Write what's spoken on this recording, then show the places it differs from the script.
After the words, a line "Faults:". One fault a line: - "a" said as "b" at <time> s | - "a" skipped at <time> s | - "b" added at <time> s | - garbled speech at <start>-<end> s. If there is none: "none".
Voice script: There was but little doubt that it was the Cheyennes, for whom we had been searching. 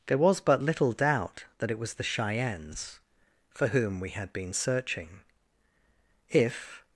There was but little doubt that it was the Cheyennes, for whom we had been searching. If
Faults:
- "If" added at 6.3 s